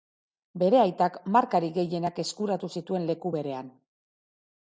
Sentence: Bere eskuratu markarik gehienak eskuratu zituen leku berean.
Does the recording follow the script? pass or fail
fail